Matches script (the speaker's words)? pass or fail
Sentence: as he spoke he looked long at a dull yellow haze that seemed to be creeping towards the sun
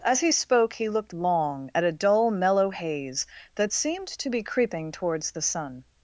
fail